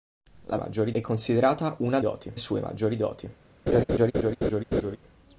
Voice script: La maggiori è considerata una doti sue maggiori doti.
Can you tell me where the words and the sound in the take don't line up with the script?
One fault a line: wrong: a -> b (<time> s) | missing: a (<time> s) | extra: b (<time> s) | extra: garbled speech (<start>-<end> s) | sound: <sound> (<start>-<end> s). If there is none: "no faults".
sound: laugh (3.7-5.0 s)